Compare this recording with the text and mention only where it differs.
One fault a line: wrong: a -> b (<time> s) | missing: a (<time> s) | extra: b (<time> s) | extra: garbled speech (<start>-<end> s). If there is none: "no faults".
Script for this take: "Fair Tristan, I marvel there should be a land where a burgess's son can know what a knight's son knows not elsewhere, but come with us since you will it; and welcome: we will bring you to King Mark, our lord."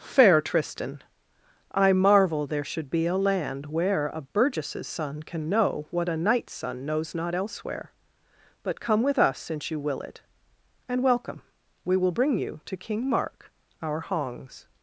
wrong: lord -> hongs (14.0 s)